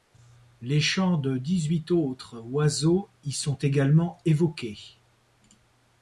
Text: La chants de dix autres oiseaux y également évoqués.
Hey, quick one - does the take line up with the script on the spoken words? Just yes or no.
no